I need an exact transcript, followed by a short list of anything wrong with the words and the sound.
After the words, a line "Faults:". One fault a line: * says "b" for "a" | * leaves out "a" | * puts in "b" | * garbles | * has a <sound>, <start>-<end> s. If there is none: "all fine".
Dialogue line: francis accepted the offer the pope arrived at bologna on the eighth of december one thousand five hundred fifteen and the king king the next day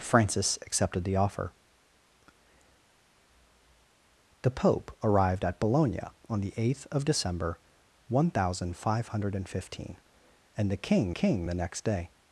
francis accepted the offer the pope arrived at bologna on the eighth of december one thousand five hundred fifteen and the king king the next day
Faults:
all fine